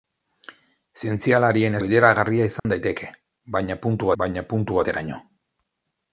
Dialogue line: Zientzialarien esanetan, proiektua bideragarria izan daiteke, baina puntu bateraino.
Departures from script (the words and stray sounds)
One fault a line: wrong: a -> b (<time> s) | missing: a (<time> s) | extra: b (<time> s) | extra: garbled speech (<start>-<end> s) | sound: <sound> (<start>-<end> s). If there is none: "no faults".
missing: esanetan proiektua (1.8 s)
sound: dropout (2.6-2.6 s)
extra: baina puntu (4.2 s)